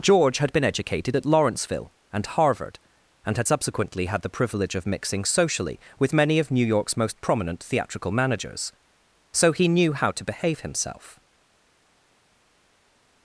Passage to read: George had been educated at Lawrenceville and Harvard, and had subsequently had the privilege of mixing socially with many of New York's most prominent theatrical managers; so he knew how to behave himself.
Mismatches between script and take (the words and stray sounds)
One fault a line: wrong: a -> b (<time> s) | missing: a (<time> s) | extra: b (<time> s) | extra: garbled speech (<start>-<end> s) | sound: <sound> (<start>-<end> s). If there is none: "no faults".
no faults